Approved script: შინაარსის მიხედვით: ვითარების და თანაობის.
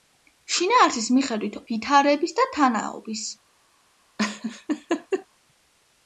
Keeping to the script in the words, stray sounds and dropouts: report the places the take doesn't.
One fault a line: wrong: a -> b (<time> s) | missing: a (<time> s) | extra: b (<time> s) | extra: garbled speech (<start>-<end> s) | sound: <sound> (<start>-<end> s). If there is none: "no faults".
sound: laugh (4.2-5.3 s)